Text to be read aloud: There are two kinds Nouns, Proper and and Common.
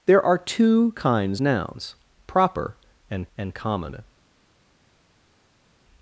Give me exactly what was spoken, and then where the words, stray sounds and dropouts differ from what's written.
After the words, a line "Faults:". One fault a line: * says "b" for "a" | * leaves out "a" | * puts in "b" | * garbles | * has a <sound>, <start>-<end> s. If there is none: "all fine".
There are two kinds Nouns, Proper and and Common.
Faults:
all fine